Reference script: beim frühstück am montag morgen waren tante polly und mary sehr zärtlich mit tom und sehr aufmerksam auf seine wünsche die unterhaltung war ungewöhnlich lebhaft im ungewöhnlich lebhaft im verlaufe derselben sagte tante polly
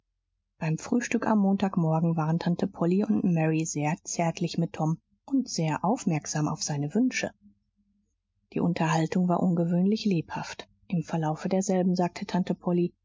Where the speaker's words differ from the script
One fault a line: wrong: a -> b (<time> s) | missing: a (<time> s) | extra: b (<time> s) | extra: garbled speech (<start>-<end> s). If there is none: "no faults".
missing: ungewöhnlich lebhaft im (11.0 s)